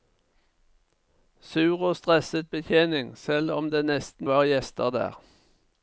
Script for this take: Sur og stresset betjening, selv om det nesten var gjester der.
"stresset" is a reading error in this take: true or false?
false